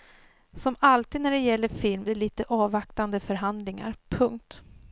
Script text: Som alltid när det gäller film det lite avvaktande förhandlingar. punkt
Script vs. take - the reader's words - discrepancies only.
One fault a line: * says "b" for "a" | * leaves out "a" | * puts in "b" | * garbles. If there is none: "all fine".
all fine